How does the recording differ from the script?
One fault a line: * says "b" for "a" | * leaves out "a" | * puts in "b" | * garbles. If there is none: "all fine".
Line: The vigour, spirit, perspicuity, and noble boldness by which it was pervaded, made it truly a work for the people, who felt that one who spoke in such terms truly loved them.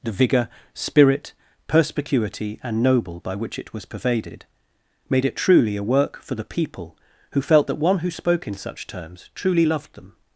* leaves out "boldness"